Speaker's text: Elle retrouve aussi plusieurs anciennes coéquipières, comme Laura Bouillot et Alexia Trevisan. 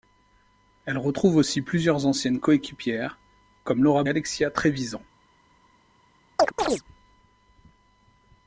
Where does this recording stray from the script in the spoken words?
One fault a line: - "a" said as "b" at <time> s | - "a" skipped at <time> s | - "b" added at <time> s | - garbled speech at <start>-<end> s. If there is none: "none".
- "Bouillot et" skipped at 4.0 s